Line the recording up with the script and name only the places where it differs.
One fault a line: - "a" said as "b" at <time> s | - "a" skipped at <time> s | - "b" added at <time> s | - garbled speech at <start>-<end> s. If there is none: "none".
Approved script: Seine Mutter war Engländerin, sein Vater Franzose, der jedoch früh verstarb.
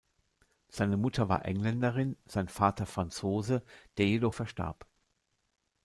- "früh" skipped at 4.3 s